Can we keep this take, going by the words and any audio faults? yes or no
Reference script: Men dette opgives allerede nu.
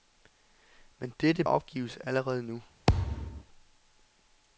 no